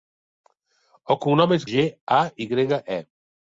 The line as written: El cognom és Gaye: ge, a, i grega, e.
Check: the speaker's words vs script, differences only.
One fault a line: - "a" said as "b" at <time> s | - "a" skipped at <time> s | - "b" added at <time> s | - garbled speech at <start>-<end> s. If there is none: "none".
- "Gaye" skipped at 1.7 s